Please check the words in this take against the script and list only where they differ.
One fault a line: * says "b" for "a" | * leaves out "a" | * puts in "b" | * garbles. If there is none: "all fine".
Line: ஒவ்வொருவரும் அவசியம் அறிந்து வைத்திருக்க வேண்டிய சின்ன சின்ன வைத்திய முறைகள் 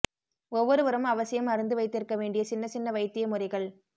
all fine